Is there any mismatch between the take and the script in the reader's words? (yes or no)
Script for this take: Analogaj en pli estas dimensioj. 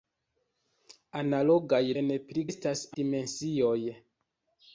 no